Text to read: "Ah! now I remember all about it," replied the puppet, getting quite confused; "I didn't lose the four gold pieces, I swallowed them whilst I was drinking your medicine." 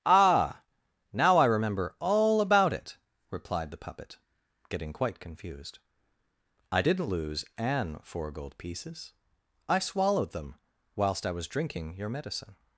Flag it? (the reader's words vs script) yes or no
yes